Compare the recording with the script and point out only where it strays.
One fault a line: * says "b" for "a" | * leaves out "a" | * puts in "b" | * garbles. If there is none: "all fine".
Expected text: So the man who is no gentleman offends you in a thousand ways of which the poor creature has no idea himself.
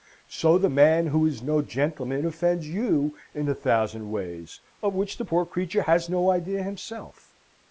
all fine